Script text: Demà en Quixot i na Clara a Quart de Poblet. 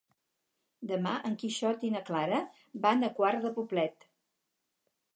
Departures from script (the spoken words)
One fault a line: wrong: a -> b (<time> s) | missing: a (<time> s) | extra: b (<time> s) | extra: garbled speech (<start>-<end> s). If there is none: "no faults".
extra: van (2.9 s)